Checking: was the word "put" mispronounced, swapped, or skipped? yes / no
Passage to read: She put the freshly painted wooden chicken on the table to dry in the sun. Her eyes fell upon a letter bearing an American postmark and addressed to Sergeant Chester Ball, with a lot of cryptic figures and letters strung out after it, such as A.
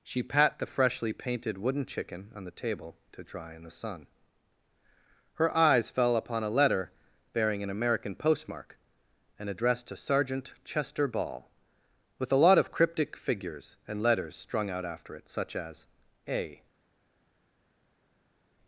yes